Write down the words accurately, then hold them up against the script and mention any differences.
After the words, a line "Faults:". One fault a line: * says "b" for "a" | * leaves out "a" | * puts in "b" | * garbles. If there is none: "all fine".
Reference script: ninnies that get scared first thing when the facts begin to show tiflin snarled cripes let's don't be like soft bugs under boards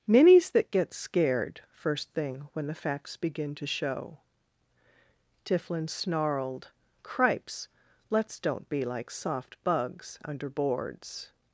ninnies that get scared first thing when the facts begin to show tiflin snarled cripes let's don't be like soft bugs under boards
Faults:
all fine